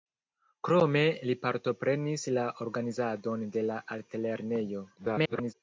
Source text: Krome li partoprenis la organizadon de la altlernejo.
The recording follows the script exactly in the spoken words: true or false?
false